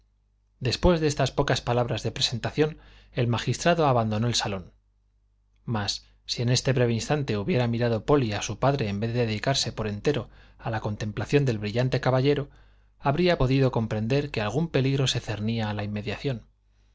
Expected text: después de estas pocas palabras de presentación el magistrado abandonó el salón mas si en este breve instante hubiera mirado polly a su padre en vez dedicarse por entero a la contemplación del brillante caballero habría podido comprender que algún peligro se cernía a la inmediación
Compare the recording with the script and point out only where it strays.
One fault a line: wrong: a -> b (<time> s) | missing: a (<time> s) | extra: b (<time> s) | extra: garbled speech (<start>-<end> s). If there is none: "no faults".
extra: de (9.1 s)